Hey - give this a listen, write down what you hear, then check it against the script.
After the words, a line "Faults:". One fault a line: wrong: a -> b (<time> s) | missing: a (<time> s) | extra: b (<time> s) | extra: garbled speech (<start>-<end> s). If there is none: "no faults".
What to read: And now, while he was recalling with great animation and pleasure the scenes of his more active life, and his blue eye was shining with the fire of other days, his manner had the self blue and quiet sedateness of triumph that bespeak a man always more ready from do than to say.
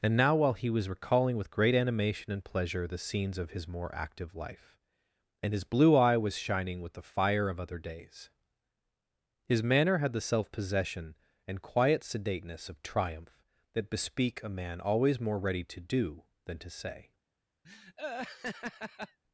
And now, while he was recalling with great animation and pleasure the scenes of his more active life, and his blue eye was shining with the fire of other days, his manner had the self possession and quiet sedateness of triumph that bespeak a man always more ready to do than to say.
Faults:
wrong: blue -> possession (10.5 s)
wrong: from -> to (15.7 s)